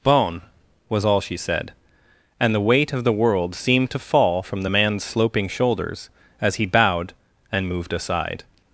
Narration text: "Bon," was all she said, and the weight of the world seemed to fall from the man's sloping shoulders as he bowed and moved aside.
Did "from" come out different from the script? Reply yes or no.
no